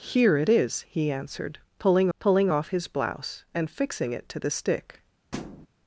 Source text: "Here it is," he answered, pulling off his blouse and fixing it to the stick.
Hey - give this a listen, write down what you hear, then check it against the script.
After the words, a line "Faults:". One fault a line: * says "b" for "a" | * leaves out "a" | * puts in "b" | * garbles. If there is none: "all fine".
"Here it is," he answered, pulling pulling off his blouse and fixing it to the stick.
Faults:
* puts in "pulling"